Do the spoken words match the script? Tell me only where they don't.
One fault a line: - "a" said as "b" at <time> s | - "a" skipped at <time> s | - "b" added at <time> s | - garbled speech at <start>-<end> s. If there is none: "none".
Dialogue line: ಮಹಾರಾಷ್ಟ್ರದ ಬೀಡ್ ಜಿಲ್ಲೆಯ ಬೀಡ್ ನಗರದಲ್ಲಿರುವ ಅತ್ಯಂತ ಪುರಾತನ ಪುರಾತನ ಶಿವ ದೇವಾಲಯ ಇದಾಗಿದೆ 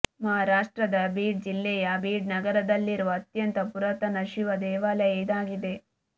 - "ಪುರಾತನ" skipped at 4.2 s